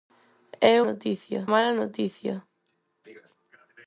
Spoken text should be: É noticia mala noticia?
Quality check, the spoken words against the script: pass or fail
pass